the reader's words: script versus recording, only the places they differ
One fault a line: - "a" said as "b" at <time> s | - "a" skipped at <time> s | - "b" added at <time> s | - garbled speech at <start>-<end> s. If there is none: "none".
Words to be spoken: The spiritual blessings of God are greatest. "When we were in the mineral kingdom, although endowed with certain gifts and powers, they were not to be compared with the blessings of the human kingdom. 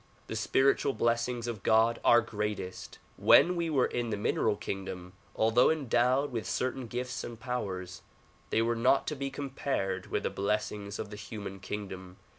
none